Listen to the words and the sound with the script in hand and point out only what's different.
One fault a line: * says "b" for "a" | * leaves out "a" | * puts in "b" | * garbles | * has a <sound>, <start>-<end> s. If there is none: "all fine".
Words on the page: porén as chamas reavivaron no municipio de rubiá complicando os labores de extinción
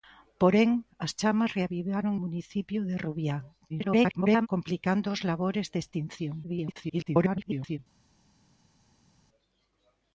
* leaves out "no"
* garbles
* garbles